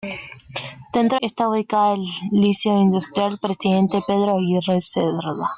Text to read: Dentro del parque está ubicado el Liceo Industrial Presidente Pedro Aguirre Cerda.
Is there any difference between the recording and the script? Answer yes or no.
yes